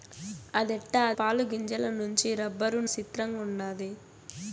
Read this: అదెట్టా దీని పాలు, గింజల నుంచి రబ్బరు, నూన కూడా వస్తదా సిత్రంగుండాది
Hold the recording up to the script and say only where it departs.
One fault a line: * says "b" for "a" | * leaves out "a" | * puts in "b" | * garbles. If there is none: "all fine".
* leaves out "దీని"
* leaves out "నూన కూడా వస్తదా"